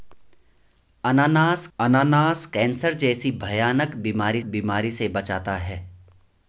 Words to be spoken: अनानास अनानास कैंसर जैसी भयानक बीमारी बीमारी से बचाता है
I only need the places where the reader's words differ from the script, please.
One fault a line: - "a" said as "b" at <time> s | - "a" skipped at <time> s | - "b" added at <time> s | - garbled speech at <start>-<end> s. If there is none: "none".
none